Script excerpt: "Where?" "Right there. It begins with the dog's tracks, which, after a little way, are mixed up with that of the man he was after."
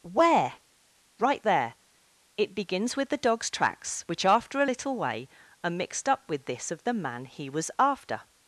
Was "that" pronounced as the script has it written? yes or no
no